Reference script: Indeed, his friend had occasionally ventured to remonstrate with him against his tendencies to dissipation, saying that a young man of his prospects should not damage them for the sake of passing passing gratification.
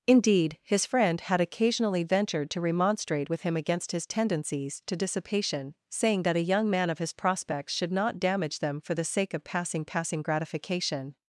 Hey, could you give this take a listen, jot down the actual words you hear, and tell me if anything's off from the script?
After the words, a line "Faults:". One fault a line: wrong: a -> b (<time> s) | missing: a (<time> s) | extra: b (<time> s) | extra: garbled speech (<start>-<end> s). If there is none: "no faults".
Indeed, his friend had occasionally ventured to remonstrate with him against his tendencies to dissipation, saying that a young man of his prospects should not damage them for the sake of passing passing gratification.
Faults:
no faults